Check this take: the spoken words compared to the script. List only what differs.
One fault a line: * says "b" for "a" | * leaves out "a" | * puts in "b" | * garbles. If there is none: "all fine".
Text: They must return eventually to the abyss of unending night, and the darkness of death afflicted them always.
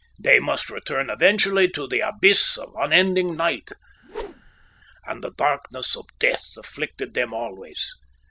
all fine